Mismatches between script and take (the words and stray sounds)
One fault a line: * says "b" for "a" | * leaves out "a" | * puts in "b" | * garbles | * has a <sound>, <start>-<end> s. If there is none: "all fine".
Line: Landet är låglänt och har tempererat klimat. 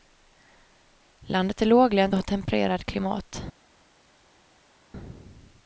all fine